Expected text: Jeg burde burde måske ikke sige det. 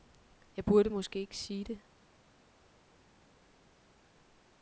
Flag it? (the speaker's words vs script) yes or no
yes